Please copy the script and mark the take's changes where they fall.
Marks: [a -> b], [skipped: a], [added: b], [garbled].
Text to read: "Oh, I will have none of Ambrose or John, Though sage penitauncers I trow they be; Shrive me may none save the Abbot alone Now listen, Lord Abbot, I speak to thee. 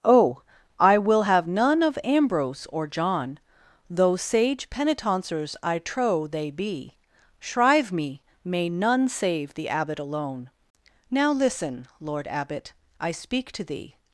"Oh, I will have none of Ambrose or John, Though sage penitauncers I trow they be; Shrive me may none save the Abbot alone Now listen, Lord Abbot, I speak to thee.